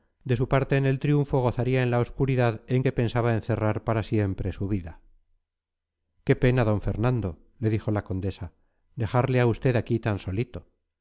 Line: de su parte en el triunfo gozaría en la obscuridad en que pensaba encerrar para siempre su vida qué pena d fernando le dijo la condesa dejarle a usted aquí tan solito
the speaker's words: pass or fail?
pass